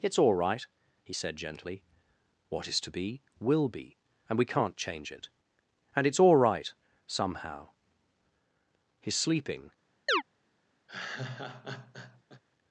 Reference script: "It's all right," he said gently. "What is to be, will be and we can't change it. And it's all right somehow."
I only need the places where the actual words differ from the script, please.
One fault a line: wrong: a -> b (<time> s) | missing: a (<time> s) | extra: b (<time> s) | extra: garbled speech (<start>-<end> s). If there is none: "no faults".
extra: His sleeping (9.0 s)